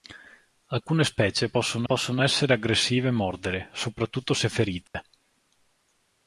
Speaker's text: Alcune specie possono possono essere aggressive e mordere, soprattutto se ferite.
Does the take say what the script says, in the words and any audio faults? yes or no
no